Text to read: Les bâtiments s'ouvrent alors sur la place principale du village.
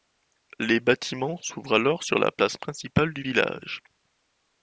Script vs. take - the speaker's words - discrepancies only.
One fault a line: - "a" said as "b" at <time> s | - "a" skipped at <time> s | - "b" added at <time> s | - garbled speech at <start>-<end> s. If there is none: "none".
none